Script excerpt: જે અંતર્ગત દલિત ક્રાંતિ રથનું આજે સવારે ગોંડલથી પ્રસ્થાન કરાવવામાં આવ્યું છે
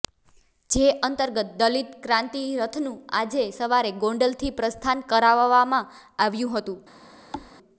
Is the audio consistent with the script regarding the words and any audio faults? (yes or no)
no